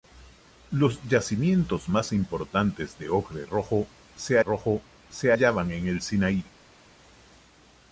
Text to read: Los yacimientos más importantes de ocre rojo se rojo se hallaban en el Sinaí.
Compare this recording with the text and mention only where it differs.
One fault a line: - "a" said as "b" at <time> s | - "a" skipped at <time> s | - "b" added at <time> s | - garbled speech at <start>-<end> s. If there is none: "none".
none